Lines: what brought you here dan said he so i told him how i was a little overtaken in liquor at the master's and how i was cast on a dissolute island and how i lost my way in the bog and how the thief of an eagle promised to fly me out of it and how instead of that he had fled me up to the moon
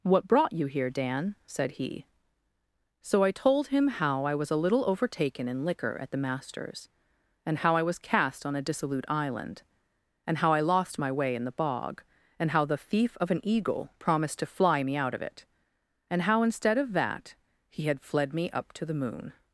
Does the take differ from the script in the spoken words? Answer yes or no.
no